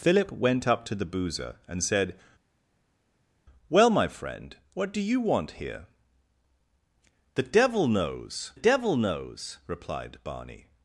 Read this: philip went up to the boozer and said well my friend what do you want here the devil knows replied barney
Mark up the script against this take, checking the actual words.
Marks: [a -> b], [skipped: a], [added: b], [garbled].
philip went up to the boozer and said well my friend what do you want here the devil knows [added: devil knows] replied barney